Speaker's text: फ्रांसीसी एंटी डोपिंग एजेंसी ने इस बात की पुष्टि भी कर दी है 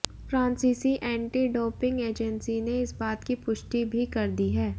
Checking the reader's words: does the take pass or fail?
pass